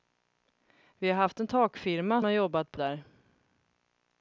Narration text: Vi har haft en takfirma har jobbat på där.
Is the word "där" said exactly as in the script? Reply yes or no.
yes